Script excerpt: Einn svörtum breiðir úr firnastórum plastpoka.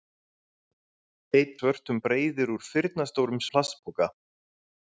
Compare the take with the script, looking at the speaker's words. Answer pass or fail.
pass